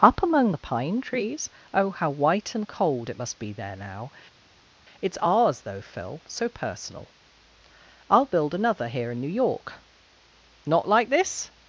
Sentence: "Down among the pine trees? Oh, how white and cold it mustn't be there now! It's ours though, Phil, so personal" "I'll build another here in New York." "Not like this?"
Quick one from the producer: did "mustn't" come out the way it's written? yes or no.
no